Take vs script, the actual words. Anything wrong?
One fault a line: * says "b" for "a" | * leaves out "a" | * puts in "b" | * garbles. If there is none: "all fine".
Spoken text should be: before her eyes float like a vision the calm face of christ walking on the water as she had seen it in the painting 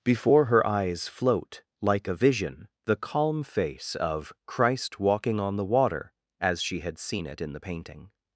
all fine